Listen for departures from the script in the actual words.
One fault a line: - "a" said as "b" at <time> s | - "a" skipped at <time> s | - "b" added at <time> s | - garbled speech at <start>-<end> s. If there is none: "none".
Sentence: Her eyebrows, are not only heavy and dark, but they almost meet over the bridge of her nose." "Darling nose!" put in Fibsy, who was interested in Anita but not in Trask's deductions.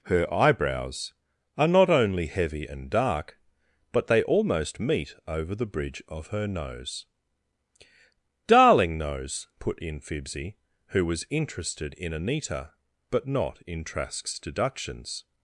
none